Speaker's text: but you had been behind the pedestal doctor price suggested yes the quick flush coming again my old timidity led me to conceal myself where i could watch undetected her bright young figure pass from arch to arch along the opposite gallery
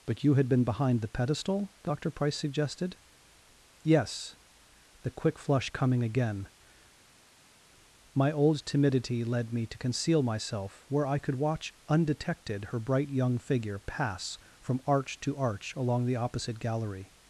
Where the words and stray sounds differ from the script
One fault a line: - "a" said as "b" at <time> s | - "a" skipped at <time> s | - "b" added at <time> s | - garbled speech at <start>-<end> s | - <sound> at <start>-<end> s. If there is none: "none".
none